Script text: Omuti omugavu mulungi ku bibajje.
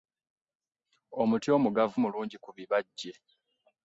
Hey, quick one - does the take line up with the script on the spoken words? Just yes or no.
yes